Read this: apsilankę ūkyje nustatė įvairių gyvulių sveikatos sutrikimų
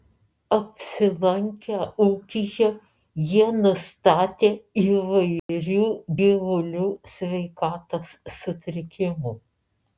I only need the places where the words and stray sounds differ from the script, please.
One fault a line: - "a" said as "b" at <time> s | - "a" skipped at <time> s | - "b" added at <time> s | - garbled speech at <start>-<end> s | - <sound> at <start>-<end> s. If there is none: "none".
- "jie" added at 3.3 s
- dropout at 5.4-5.5 s